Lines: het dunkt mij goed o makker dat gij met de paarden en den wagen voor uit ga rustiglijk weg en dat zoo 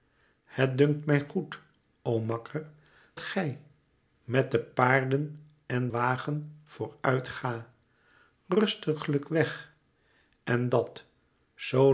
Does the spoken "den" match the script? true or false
false